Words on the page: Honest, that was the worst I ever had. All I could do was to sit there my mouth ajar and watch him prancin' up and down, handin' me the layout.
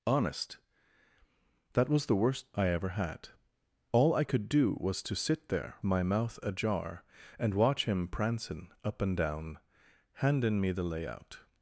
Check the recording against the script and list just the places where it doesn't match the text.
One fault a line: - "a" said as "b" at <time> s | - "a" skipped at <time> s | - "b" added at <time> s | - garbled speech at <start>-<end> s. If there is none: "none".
none